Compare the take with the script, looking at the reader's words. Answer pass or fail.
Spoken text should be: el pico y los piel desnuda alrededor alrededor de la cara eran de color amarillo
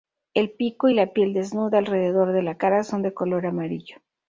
fail